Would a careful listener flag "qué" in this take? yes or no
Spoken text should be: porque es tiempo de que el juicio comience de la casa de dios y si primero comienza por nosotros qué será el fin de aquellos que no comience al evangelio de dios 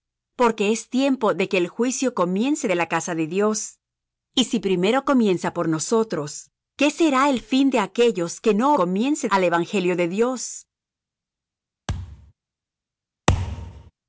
no